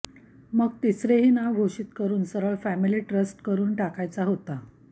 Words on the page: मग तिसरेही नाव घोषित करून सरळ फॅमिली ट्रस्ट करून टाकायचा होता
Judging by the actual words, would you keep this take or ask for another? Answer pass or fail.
pass